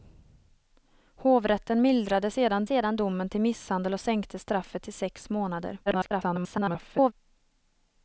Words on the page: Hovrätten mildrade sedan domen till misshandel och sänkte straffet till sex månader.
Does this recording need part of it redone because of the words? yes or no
yes